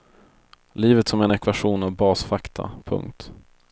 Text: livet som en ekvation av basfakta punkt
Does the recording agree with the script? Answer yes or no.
yes